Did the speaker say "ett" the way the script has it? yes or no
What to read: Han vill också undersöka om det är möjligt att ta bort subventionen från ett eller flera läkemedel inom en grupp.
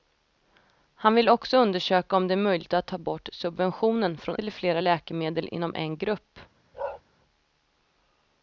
no